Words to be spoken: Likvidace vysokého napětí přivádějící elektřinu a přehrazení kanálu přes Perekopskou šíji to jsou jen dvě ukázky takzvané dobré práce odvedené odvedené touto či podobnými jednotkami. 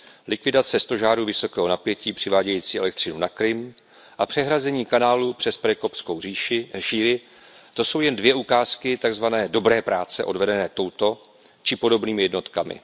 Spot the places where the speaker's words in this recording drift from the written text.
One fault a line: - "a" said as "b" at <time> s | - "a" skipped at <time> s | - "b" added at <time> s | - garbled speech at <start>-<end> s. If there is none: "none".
- "stožárů" added at 0.8 s
- "na Krym" added at 3.2 s
- "odvedené" skipped at 10.7 s